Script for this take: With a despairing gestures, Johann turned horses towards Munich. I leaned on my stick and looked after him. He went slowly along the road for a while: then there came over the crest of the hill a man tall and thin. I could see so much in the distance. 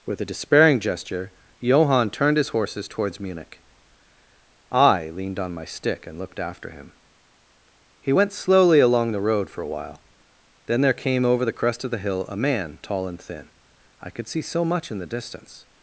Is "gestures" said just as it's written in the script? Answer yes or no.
no